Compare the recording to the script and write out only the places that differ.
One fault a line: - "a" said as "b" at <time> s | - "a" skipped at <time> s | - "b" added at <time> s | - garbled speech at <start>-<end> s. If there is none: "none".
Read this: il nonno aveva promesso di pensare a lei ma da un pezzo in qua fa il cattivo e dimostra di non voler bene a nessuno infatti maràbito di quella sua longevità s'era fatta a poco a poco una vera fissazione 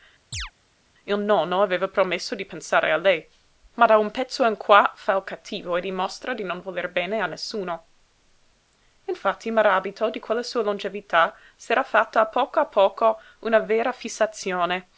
none